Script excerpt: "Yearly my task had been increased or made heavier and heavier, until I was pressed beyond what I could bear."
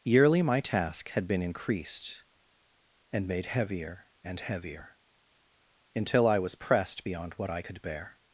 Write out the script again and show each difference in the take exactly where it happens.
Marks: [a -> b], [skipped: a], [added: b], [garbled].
"Yearly my task had been increased [or -> and] made heavier and heavier, until I was pressed beyond what I could bear."